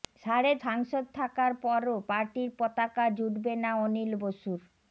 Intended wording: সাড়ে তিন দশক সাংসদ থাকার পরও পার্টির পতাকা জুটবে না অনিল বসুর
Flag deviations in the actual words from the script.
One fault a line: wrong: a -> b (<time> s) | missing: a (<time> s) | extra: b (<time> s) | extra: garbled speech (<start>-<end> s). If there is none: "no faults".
missing: তিন দশক (0.5 s)